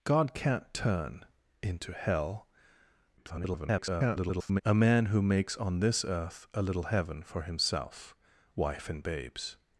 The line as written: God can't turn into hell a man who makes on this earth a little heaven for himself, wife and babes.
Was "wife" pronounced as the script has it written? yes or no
yes